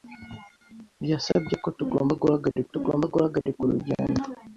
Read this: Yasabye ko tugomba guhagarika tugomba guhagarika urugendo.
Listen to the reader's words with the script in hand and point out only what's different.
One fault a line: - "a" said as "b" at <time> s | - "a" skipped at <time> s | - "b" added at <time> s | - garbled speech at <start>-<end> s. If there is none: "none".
none